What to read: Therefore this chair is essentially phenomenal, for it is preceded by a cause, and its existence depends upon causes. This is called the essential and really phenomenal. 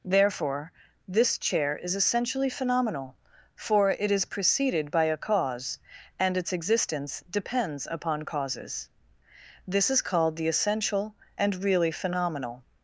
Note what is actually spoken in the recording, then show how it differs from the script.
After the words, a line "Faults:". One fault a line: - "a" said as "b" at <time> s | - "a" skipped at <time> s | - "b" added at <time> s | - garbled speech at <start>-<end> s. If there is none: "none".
Therefore this chair is essentially phenomenal, for it is preceded by a cause, and its existence depends upon causes. This is called the essential and really phenomenal.
Faults:
none